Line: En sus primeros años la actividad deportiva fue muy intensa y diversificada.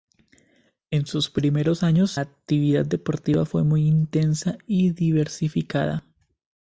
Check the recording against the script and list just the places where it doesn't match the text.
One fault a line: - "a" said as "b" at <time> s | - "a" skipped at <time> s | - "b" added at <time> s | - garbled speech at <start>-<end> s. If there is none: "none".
- "la" skipped at 2.2 s